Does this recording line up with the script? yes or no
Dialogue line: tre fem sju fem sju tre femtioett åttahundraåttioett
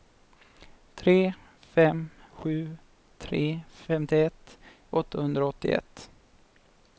no